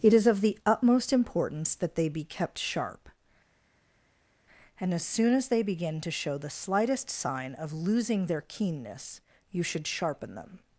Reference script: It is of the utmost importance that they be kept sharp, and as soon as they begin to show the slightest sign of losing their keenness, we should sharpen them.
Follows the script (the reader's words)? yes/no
no